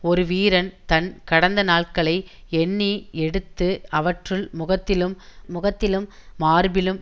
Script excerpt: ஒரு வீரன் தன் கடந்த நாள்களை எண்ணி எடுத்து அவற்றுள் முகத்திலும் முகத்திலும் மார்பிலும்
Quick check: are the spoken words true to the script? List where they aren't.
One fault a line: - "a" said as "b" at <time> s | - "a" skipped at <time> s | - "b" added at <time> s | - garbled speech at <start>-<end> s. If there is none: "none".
none